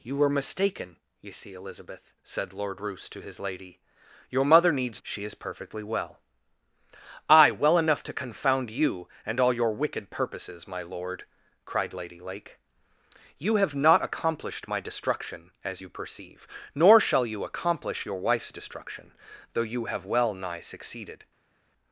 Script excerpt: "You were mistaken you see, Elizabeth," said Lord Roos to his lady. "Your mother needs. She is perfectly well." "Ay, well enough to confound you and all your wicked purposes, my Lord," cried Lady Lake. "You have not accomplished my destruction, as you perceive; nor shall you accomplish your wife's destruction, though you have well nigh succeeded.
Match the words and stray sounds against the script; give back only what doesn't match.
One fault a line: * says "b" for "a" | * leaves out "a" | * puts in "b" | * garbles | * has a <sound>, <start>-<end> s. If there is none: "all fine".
all fine